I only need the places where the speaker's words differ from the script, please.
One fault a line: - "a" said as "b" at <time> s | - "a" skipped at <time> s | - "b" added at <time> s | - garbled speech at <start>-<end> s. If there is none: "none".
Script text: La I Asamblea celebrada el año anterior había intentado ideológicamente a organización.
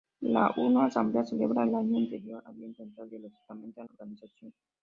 none